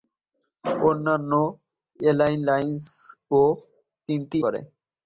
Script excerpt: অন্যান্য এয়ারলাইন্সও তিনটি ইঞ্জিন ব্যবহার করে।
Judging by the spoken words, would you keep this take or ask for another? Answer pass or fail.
fail